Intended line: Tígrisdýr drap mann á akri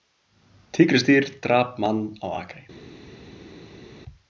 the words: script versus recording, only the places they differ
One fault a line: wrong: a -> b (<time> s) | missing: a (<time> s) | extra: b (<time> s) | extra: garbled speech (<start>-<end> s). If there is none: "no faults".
no faults